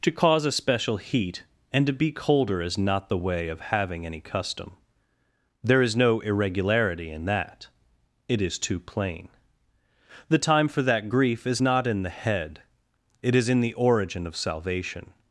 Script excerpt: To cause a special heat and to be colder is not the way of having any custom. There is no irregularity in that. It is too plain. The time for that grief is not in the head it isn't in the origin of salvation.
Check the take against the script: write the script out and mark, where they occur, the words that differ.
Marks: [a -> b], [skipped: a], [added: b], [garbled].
To cause a special heat and to be colder is not the way of having any custom. There is no irregularity in that. It is too plain. The time for that grief is not in the head it [isn't -> is] in the origin of salvation.